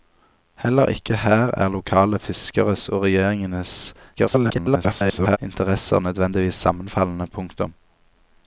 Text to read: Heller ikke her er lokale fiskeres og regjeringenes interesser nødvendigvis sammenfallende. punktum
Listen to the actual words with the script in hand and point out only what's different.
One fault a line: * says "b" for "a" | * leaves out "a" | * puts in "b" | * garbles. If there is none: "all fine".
* garbles